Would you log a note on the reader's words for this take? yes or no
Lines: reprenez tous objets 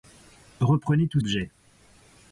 no